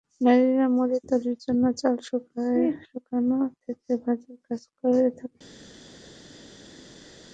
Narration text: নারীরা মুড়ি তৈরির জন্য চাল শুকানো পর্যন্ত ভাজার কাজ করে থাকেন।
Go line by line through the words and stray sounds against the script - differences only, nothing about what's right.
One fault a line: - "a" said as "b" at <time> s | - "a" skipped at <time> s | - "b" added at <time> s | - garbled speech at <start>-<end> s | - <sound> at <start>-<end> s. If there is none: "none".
- "পর্যন্ত" said as "থেকে" at 3.6 s